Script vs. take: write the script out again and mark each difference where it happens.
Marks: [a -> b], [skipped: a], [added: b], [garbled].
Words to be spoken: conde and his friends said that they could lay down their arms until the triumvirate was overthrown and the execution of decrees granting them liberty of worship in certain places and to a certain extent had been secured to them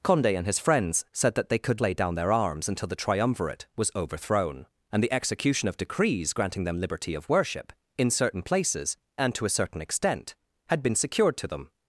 conde and his friends said that they could lay down their arms until the triumvirate was overthrown and the execution of decrees granting them liberty of worship in certain places and to a certain extent had been secured to them